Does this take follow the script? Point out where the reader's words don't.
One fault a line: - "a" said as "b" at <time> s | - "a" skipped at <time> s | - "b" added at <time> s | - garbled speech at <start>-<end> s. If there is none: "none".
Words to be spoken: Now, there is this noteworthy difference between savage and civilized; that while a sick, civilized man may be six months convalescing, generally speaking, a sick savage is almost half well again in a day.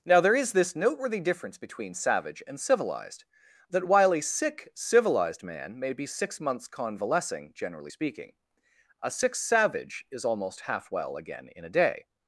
none